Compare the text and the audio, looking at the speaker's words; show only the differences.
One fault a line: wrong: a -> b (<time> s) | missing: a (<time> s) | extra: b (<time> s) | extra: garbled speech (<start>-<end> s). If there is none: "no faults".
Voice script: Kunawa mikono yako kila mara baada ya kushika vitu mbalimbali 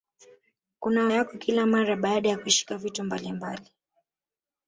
missing: mikono (1.1 s)